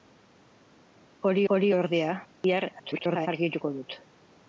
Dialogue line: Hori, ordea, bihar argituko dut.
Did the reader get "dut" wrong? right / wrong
right